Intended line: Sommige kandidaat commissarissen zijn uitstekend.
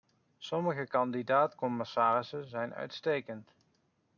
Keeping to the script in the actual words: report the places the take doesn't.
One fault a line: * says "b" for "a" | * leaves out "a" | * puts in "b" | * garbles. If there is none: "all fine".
all fine